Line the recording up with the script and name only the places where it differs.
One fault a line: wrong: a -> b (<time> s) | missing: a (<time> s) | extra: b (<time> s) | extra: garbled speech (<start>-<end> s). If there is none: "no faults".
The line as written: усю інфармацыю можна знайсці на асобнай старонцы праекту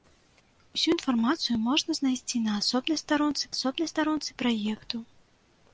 extra: асобнай старонцы (3.5 s)